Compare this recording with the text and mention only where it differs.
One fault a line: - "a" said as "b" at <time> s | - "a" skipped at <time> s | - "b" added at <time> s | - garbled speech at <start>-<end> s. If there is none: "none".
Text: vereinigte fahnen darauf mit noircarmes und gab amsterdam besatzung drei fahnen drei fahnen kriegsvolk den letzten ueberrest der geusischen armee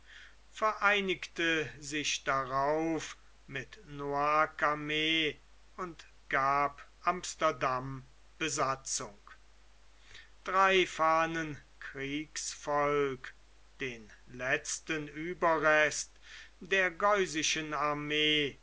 - "fahnen" said as "sich" at 1.8 s
- "drei fahnen" skipped at 11.6 s